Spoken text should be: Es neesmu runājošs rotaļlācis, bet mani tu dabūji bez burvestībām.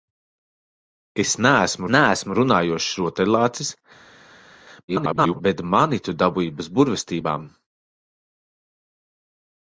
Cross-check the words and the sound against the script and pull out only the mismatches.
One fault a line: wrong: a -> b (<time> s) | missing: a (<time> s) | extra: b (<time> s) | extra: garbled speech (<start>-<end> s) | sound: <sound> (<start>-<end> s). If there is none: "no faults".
extra: neesmu (1.9 s)
extra: garbled speech (4.9-5.4 s)